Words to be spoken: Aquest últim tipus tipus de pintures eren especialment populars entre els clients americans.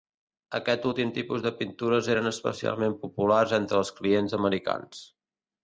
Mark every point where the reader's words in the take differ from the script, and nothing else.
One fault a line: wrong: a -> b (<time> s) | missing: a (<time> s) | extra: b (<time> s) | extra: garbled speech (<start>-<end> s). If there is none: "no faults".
missing: tipus (1.4 s)